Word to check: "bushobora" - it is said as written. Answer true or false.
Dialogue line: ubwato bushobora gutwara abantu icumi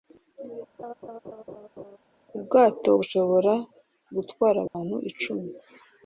true